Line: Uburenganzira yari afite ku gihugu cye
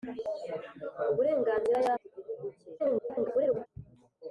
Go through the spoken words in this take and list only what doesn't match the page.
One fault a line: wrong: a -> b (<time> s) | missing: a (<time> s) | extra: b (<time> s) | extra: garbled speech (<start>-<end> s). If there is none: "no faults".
missing: afite (1.9 s)
extra: garbled speech (2.8-3.7 s)